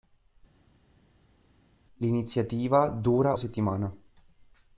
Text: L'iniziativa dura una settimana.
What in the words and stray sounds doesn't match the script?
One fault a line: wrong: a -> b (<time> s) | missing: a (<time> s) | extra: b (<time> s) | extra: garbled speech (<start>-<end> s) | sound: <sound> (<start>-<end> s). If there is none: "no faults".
missing: una (3.3 s)